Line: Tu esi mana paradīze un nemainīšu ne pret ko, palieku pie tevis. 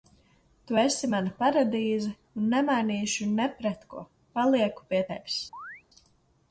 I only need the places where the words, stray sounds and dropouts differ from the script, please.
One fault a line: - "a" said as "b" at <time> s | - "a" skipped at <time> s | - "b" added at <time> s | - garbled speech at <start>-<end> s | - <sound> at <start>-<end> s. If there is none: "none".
- chirp at 5.5-5.8 s